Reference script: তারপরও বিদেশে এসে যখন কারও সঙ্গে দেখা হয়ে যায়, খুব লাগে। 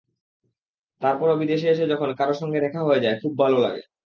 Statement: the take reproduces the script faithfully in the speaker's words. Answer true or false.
false